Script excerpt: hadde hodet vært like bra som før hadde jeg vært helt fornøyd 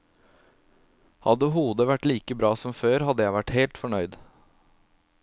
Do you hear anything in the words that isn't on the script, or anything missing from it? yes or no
no